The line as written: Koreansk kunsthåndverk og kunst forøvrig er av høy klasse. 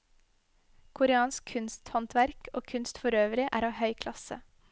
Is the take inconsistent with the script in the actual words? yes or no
no